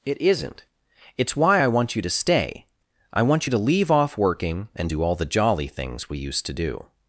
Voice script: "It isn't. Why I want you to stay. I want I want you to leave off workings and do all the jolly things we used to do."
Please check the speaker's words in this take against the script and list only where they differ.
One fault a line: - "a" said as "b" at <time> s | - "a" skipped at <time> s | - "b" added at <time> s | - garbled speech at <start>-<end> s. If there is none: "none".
- "It's" added at 1.1 s
- "I want" skipped at 3.5 s
- "workings" said as "working" at 4.2 s